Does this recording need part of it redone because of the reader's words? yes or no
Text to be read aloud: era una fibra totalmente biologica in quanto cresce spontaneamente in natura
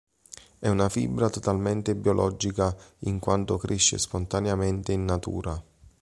yes